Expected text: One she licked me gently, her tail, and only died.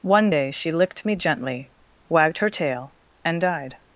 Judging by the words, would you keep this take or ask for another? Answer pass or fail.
fail